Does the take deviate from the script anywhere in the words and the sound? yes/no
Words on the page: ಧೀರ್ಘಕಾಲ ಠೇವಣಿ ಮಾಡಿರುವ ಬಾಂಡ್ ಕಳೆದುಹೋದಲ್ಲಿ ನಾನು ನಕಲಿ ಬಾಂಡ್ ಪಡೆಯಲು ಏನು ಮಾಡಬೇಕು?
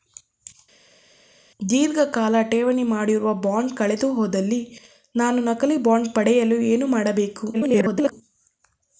yes